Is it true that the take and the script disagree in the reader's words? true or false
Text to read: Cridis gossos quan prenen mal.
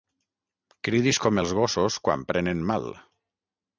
true